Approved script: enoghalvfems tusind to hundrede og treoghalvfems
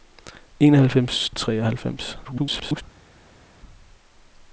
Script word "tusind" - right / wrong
wrong